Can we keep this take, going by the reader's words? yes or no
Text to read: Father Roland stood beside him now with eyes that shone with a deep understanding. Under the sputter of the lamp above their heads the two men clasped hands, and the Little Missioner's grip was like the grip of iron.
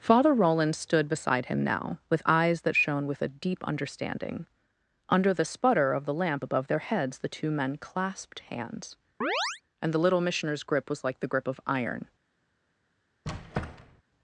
yes